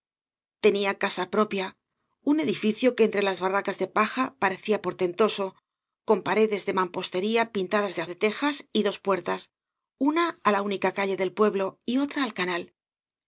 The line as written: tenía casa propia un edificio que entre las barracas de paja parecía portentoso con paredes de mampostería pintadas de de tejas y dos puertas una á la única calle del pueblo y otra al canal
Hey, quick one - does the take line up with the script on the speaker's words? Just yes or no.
yes